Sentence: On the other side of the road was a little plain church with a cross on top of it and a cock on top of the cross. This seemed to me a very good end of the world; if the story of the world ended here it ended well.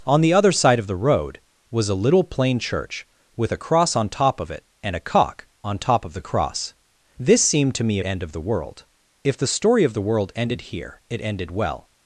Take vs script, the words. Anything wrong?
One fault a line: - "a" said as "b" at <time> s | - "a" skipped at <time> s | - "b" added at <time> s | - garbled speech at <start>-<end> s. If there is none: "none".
- "a very good" skipped at 8.0 s